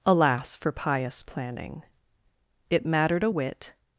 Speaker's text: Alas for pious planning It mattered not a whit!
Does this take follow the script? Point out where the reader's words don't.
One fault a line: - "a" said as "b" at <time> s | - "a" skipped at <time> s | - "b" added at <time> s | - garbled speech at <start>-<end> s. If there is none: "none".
- "not" skipped at 3.2 s